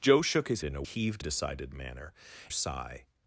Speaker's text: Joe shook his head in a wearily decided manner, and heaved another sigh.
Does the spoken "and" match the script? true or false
false